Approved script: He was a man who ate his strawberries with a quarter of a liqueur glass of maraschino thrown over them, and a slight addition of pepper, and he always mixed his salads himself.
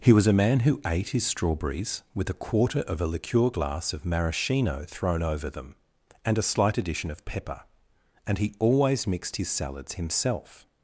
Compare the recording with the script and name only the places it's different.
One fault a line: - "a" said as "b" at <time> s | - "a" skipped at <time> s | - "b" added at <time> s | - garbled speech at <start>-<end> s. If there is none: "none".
none